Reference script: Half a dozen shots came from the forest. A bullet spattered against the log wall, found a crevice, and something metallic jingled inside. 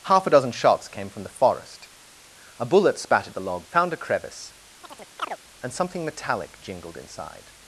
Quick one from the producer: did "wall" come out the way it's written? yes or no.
no